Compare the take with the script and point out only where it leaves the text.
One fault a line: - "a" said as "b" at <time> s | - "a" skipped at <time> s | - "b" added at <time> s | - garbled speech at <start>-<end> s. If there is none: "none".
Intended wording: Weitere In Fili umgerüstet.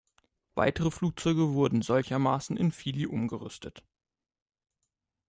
- "Flugzeuge wurden solchermaßen" added at 0.9 s